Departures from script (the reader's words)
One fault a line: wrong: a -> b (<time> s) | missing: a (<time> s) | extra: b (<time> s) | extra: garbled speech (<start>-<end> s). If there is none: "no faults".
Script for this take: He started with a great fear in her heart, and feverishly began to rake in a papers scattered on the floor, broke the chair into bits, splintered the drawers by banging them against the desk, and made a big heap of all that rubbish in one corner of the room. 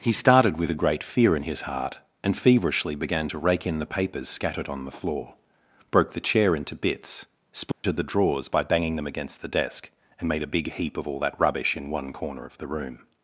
wrong: her -> his (1.4 s)
wrong: a -> the (3.8 s)